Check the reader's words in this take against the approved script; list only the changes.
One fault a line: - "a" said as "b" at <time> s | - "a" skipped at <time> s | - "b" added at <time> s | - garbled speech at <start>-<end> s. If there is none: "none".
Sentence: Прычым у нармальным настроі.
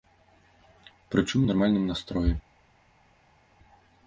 none